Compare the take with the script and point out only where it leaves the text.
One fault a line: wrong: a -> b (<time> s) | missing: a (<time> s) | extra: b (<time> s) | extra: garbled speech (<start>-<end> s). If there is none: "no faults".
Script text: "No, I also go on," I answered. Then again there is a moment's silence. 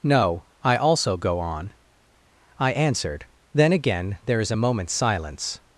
no faults